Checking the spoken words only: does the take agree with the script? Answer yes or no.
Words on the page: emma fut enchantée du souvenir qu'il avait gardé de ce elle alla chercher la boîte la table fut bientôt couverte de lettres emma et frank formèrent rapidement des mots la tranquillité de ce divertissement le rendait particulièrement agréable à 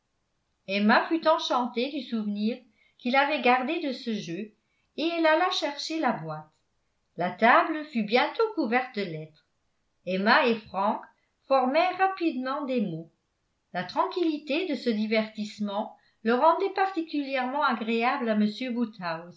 no